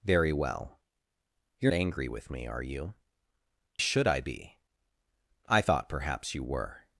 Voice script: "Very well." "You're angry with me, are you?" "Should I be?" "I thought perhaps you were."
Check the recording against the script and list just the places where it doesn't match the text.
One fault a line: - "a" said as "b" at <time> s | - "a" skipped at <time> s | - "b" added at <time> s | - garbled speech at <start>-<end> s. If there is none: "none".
none